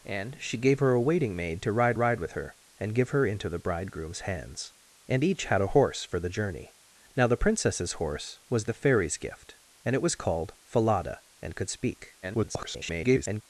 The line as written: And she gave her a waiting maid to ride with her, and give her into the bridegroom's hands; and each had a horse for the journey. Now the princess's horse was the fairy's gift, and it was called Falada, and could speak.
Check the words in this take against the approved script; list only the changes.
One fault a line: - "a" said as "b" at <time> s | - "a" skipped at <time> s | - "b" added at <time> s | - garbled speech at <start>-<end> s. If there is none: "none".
- "ride" added at 1.9 s
- garbled speech at 12.2-13.4 s